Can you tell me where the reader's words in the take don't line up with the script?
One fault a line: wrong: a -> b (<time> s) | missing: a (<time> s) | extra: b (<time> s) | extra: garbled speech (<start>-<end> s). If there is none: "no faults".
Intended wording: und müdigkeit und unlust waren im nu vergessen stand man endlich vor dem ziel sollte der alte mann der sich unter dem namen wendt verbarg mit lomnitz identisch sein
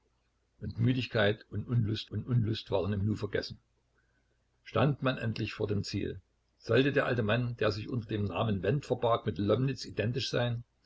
extra: und unlust (2.1 s)